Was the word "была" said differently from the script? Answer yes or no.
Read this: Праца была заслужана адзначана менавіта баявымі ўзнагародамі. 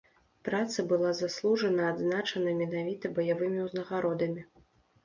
no